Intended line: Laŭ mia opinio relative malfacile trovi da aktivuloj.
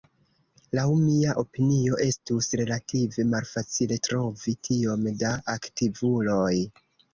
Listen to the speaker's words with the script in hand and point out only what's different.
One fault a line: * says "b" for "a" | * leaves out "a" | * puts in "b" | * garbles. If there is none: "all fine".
* puts in "estus"
* puts in "tiom"